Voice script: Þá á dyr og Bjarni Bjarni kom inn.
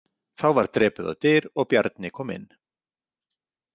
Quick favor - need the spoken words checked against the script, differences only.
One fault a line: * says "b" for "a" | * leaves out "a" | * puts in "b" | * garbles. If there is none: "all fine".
* puts in "var drepið"
* leaves out "Bjarni"